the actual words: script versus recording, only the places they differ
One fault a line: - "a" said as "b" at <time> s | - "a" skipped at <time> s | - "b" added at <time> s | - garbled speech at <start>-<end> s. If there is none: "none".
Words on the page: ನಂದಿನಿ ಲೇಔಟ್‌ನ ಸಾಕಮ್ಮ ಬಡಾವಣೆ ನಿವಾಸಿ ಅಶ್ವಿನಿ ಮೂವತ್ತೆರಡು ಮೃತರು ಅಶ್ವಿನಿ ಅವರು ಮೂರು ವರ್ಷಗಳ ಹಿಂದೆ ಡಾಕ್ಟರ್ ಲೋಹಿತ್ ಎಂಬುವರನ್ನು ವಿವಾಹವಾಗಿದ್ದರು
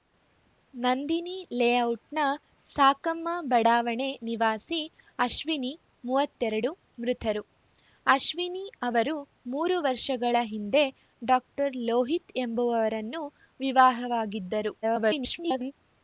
- garbled speech at 14.8-15.7 s